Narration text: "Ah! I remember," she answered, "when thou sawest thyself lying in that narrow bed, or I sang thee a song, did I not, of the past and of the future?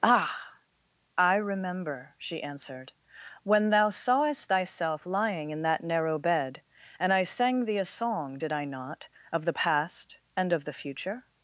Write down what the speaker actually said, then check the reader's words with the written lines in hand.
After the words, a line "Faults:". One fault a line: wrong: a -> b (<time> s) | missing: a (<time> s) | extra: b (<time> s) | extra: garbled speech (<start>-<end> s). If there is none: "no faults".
"Ah! I remember," she answered, "when thou sawest thyself lying in that narrow bed, and I sang thee a song, did I not, of the past and of the future?
Faults:
wrong: or -> and (7.0 s)